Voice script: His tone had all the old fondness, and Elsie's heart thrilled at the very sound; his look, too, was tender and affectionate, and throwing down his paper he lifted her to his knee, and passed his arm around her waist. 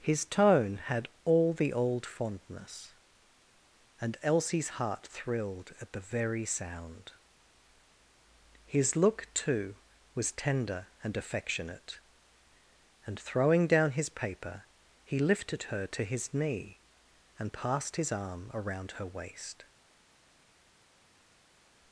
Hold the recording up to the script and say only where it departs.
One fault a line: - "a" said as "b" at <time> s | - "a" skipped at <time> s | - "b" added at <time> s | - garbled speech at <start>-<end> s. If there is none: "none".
none